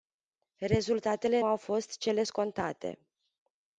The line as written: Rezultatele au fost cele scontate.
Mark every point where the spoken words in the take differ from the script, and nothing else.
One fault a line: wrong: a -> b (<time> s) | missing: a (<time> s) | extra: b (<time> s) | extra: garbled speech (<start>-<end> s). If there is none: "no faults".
no faults